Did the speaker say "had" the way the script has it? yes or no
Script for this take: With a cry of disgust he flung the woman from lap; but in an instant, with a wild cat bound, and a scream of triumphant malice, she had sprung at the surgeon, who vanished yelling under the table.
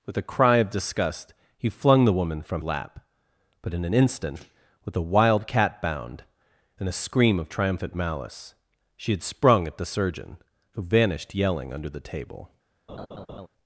yes